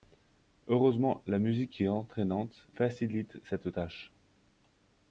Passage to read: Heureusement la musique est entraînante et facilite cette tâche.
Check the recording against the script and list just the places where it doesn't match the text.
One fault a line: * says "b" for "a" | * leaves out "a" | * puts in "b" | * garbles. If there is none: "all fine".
* leaves out "et"